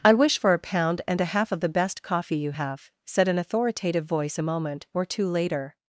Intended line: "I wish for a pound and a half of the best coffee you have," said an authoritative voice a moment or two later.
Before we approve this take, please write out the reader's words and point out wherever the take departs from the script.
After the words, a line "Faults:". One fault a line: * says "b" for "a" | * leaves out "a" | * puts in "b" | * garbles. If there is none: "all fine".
"I wish for a pound and a half of the best coffee you have," said an authoritative voice a moment or two later.
Faults:
all fine